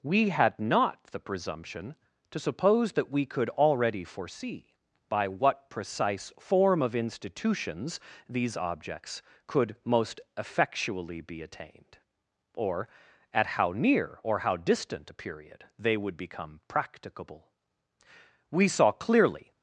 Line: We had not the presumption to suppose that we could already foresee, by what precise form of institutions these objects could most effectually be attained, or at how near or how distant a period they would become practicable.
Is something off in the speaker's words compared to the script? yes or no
yes